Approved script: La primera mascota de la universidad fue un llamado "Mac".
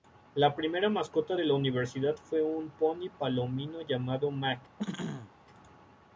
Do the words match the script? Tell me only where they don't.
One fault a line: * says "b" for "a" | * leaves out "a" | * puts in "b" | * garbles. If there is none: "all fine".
* puts in "poni palomino"